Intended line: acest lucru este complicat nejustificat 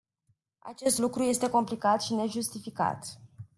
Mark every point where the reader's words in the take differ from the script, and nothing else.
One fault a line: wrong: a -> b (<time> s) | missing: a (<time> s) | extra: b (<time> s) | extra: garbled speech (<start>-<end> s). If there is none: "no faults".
extra: și (2.0 s)